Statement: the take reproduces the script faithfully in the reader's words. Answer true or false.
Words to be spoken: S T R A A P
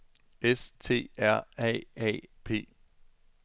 true